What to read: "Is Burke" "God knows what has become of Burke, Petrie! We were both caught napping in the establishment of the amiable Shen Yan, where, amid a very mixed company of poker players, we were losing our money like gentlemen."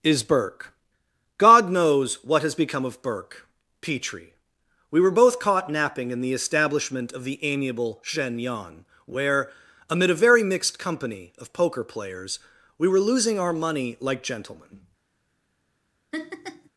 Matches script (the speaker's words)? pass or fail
pass